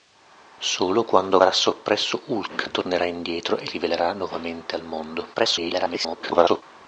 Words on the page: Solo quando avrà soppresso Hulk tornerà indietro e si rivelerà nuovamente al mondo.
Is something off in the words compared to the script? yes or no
yes